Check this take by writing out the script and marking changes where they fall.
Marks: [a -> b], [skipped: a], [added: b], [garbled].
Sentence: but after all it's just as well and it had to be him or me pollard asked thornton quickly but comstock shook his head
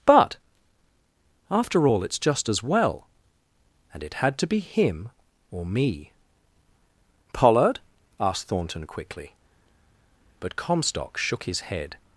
but after all it's just as well and it had to be him or me pollard asked thornton quickly but comstock shook his head